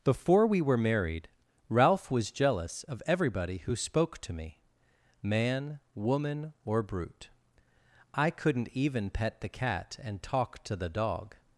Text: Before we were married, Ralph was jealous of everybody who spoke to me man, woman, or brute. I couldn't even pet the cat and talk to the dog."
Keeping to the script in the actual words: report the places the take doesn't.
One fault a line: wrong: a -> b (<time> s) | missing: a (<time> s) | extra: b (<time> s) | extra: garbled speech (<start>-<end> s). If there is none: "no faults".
no faults